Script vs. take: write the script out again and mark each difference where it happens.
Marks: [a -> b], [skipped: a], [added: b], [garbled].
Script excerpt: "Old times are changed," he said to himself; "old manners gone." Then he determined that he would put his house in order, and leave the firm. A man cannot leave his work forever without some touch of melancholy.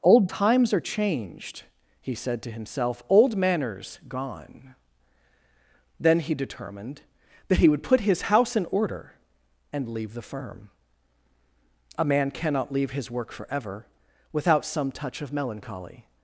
"Old times are changed," he said to himself; "old manners gone." Then he determined that he would put his house in order, and leave the firm. A man cannot leave his work forever without some touch of melancholy.